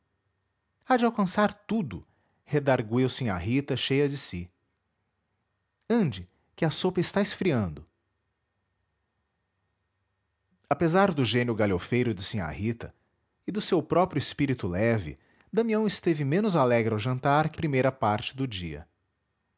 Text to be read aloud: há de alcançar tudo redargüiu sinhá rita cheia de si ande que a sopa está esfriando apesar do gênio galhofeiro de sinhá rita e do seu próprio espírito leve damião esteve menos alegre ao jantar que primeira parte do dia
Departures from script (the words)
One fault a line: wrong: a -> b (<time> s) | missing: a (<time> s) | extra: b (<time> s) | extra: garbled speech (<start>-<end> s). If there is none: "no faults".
no faults